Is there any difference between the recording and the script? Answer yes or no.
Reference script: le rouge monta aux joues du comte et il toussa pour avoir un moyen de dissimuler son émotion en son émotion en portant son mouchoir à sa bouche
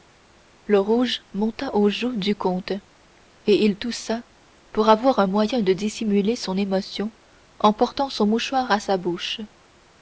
yes